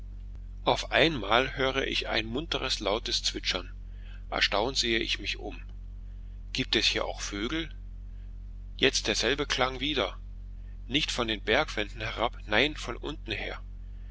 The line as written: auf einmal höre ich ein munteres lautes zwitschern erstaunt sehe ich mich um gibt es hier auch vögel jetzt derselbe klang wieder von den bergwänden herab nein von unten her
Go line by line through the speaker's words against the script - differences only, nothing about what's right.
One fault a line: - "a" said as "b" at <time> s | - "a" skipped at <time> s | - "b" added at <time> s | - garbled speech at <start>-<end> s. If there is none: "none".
- "nicht" added at 10.9 s